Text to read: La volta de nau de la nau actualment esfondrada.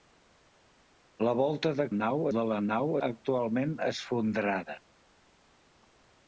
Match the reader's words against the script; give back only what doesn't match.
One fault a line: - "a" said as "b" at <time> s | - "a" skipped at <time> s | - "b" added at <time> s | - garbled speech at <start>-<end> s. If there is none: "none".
none